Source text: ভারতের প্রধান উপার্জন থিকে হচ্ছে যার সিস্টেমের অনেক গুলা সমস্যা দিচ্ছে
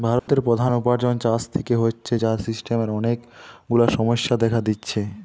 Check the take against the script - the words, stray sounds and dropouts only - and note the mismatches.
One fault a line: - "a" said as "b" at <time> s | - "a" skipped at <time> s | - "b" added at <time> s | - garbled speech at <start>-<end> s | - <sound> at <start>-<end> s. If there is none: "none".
- dropout at 0.2-0.3 s
- "চাষ" added at 1.2 s
- "দেখা" added at 4.4 s